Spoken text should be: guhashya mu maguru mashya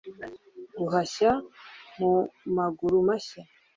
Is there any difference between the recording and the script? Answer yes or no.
no